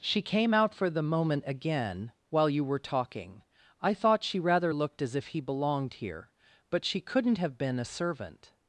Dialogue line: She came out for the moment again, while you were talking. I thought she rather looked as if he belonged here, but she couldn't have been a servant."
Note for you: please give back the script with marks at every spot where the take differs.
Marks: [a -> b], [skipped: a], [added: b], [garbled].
She came out for the moment again, while you were talking. I thought she rather looked as if he belonged here, but she couldn't have been a servant."